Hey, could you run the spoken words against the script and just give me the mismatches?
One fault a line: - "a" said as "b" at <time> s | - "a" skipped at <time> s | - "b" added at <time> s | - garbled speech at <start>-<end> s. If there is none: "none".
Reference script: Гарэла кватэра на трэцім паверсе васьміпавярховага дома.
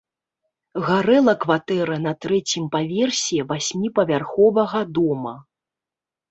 none